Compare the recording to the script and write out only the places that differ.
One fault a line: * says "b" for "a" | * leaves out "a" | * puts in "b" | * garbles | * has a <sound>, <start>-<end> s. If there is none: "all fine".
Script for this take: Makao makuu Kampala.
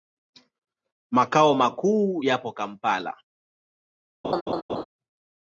* puts in "yapo"
* has a laugh, 4.2-4.8 s